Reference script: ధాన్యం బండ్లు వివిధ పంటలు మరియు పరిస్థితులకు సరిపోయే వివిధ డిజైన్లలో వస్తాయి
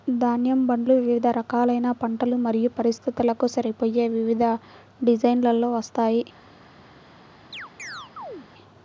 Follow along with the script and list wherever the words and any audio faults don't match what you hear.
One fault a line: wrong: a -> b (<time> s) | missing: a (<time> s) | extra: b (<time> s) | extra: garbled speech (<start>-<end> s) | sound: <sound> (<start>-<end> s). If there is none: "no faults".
extra: రకాలైన (1.4 s)
sound: chirp (7.5-8.5 s)